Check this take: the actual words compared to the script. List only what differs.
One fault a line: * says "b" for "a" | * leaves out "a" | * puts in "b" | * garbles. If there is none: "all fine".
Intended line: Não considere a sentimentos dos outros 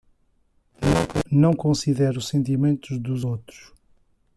* says "os" for "a"